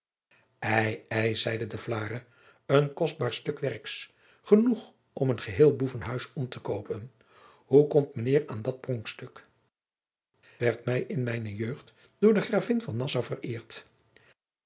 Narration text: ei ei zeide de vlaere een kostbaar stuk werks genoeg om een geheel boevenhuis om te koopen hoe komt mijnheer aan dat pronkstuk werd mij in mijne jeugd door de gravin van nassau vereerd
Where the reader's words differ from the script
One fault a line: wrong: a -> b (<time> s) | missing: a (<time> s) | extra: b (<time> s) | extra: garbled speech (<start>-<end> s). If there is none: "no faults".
no faults